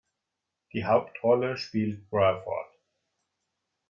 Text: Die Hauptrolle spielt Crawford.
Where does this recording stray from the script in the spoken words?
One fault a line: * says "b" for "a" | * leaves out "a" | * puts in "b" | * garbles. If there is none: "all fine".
all fine